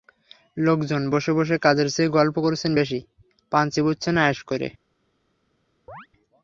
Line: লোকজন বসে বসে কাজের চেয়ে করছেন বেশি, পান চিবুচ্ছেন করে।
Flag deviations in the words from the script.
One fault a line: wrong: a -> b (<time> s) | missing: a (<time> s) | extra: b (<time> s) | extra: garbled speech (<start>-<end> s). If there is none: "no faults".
extra: গল্প (2.1 s)
extra: আয়েশ (4.2 s)